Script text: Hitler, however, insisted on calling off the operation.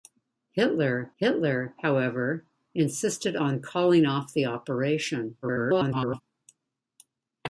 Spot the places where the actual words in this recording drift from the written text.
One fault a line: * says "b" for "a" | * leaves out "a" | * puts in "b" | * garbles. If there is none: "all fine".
* puts in "hitler"
* garbles